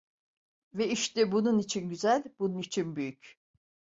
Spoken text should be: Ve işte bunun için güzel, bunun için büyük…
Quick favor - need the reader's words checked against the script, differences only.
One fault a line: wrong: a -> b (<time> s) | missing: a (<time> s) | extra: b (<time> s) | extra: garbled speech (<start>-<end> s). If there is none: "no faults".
no faults